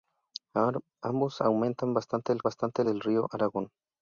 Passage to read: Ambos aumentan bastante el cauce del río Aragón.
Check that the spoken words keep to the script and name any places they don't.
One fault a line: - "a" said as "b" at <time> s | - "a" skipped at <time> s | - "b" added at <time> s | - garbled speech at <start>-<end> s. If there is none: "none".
- "cauce" said as "bastante" at 2.4 s